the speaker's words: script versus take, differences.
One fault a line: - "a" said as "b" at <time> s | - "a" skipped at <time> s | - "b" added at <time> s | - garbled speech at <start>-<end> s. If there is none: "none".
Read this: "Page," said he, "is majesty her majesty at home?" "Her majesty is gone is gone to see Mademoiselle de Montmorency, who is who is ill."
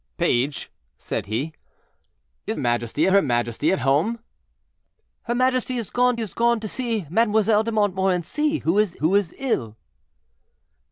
none